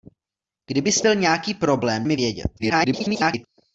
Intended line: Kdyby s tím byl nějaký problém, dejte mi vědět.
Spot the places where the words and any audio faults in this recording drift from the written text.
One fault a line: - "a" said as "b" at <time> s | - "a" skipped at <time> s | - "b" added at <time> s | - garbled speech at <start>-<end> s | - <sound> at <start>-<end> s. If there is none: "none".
- "tím" skipped at 1.0 s
- "dejte" skipped at 2.0 s
- garbled speech at 2.6-3.5 s